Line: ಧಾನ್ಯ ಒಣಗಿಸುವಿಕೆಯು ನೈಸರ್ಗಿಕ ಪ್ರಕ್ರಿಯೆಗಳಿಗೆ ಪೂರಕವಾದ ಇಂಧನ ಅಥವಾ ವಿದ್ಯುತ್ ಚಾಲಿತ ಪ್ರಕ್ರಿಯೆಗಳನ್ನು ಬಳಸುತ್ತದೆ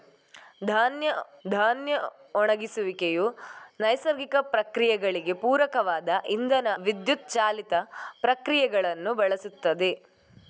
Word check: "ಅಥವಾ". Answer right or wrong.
wrong